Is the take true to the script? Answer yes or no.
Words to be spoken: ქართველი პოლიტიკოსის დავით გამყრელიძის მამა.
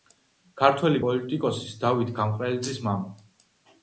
yes